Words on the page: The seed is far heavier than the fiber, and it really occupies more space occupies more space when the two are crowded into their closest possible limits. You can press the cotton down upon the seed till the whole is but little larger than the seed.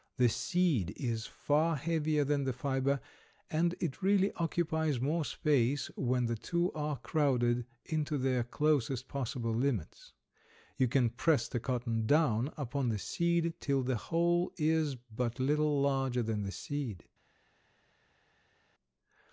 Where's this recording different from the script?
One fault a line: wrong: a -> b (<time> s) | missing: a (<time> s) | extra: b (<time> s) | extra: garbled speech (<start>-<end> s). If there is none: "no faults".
missing: occupies more space (5.9 s)